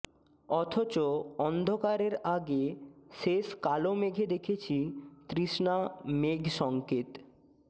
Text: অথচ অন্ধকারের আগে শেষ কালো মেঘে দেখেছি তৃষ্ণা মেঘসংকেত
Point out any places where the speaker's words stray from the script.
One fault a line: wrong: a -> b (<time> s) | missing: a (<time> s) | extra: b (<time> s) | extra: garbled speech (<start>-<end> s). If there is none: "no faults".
no faults